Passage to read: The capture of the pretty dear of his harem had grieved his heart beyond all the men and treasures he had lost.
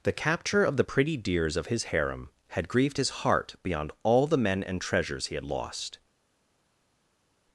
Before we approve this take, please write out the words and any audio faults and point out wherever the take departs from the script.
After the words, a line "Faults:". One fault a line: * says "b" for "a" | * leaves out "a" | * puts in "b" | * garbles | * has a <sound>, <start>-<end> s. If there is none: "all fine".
The capture of the pretty dears of his harem had grieved his heart beyond all the men and treasures he had lost.
Faults:
* says "dears" for "dear"